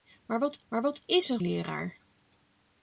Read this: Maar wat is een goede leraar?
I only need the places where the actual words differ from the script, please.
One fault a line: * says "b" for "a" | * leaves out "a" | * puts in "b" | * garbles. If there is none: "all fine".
* puts in "maar wat"
* leaves out "goede"